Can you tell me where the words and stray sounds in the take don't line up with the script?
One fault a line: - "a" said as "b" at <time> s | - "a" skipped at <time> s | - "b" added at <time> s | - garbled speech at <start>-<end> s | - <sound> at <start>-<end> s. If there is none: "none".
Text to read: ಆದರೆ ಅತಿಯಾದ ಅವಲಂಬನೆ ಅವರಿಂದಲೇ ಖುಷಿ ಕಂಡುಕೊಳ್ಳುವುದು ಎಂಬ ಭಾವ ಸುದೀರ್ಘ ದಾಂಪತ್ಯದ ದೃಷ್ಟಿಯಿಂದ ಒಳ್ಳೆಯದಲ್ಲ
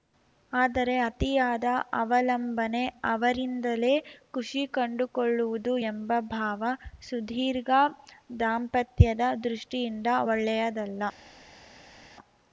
none